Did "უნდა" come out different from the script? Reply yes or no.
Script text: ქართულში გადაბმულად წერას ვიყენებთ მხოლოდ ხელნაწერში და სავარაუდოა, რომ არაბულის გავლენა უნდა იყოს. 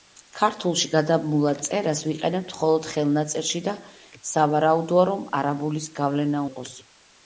yes